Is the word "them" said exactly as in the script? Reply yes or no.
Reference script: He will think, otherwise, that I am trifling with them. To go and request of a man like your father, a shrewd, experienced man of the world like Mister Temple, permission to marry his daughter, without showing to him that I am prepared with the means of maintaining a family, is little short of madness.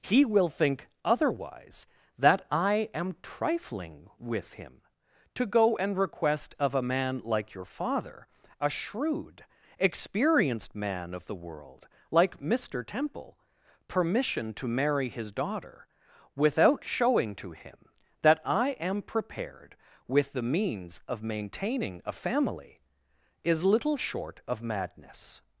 no